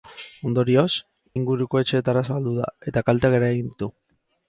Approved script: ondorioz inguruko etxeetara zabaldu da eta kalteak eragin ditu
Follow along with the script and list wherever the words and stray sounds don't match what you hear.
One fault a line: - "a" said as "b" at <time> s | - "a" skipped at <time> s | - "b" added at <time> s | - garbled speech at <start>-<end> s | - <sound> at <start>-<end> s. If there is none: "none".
none